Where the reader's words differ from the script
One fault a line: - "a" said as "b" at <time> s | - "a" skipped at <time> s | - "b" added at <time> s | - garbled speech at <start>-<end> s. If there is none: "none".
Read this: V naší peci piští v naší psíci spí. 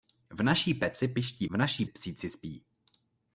none